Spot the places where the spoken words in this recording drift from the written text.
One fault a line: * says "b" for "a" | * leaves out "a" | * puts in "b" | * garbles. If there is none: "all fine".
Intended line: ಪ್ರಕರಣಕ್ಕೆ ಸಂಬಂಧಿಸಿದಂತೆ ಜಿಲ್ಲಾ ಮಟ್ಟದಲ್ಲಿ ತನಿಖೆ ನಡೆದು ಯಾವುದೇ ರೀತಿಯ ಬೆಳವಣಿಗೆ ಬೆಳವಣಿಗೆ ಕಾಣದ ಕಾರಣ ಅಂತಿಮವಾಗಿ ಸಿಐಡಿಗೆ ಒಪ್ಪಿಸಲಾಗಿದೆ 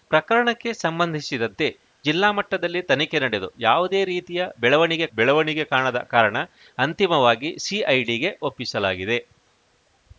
all fine